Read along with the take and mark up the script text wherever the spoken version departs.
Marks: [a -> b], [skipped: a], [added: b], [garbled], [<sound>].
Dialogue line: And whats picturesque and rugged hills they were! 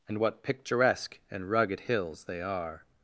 And [whats -> what] picturesque and rugged hills they [were! -> are]